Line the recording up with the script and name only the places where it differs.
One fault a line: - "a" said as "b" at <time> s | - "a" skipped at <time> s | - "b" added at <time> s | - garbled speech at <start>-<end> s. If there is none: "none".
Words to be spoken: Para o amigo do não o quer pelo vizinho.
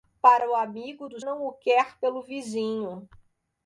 none